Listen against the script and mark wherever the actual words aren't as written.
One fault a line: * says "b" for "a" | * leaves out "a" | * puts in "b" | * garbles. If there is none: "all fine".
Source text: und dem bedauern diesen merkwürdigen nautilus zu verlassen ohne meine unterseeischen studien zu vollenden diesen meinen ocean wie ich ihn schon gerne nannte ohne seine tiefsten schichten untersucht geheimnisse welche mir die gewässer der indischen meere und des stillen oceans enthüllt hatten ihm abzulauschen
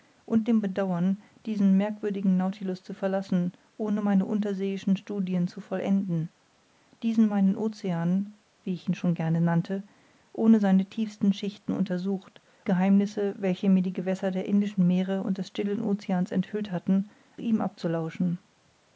all fine